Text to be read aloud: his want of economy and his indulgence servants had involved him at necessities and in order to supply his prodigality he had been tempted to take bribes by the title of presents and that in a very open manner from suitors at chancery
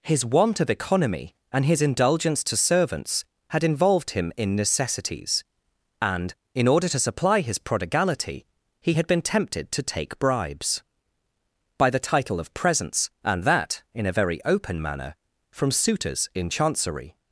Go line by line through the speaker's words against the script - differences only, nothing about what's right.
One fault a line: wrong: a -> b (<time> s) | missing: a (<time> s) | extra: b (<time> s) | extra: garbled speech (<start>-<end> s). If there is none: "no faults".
extra: to (2.5 s)
wrong: at -> in (4.3 s)
wrong: at -> in (16.3 s)